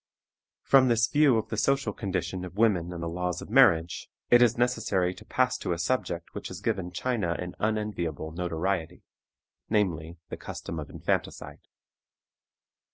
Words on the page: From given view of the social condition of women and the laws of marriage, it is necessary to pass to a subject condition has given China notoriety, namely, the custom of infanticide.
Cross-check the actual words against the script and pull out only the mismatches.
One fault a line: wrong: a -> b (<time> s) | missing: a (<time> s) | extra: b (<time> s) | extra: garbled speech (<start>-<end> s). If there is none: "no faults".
wrong: given -> this (0.9 s)
wrong: condition -> which (6.3 s)
extra: an unenviable (7.4 s)